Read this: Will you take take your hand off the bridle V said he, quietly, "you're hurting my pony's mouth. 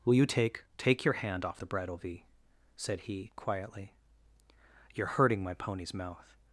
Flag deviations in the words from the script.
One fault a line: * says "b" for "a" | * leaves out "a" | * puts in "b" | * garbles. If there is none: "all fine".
all fine